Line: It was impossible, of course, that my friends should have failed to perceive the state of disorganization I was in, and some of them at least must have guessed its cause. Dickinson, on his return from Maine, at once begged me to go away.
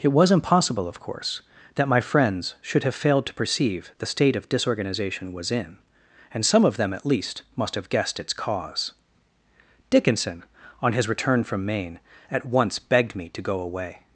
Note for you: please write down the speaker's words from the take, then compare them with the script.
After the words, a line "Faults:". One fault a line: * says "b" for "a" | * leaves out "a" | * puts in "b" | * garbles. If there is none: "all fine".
It was impossible, of course, that my friends should have failed to perceive the state of disorganization was in, and some of them at least must have guessed its cause. Dickinson, on his return from Maine, at once begged me to go away.
Faults:
* leaves out "I"